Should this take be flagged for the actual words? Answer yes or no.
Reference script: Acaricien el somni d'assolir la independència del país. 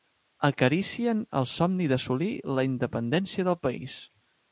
no